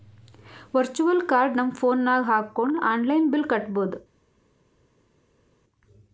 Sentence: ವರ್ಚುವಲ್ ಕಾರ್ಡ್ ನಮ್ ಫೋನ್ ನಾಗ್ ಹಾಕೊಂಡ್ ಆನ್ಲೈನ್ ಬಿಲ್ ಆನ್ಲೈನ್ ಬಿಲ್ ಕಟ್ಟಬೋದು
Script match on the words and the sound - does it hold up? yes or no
no